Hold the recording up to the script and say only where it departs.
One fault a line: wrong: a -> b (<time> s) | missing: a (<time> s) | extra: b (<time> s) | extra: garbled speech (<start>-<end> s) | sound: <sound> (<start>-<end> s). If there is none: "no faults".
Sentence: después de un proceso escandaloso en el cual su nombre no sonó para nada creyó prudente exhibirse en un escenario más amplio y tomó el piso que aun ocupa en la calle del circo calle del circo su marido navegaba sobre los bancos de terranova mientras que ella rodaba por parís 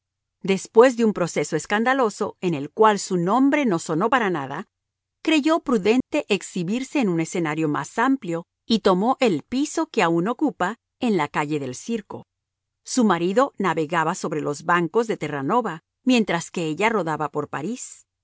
sound: dropout (6.0-6.1 s)
missing: calle del circo (12.3 s)